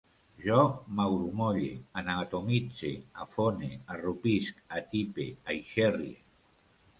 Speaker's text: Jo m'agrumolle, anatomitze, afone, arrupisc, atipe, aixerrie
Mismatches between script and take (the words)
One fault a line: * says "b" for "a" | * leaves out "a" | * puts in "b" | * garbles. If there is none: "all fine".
all fine